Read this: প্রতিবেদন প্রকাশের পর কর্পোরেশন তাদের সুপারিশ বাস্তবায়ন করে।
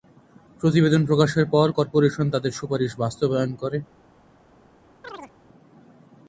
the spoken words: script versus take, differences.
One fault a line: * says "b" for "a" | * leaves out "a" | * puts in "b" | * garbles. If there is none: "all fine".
all fine